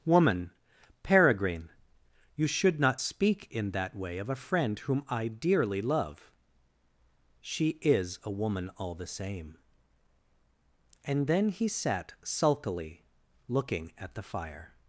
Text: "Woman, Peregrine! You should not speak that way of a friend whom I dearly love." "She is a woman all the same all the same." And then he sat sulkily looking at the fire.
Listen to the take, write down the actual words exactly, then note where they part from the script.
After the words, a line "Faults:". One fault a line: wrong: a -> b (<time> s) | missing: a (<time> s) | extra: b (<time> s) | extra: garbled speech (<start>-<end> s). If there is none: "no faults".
"Woman, Peregrine! You should not speak in that way of a friend whom I dearly love." "She is a woman all the same." And then he sat sulkily looking at the fire.
Faults:
extra: in (3.5 s)
missing: all the same (9.6 s)